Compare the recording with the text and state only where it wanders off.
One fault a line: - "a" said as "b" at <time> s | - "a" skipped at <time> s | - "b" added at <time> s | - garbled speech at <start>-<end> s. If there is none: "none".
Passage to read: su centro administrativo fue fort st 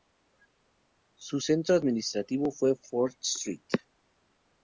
none